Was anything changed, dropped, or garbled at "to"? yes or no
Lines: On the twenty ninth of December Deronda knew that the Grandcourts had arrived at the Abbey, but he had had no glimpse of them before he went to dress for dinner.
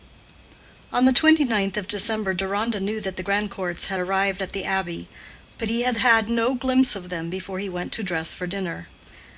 no